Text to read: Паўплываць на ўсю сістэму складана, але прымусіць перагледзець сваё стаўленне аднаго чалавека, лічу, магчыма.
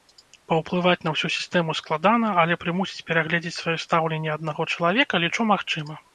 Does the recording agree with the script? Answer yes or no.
yes